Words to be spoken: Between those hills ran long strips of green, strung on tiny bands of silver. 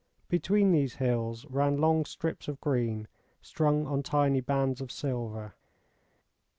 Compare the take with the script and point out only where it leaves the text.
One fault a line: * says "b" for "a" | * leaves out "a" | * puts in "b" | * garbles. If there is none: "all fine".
* says "these" for "those"